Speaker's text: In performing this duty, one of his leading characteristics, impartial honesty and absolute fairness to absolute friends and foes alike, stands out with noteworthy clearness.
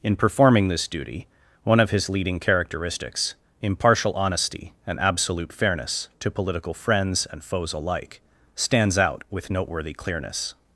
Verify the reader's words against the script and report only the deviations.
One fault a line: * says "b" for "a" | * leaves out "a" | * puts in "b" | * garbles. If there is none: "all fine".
* says "political" for "absolute"